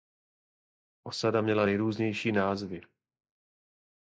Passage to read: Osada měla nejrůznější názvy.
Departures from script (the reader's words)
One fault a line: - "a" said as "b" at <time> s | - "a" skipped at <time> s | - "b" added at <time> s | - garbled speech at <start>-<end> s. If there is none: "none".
none